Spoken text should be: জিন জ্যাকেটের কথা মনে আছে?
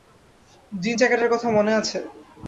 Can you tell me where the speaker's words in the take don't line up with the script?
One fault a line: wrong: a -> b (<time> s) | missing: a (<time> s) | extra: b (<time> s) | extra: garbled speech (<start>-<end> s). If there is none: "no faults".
no faults